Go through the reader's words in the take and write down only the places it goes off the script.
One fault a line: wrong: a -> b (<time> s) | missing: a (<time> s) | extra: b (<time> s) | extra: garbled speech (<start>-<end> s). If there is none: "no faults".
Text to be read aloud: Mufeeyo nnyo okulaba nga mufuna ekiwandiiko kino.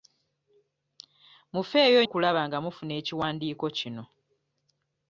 missing: nnyo (2.0 s)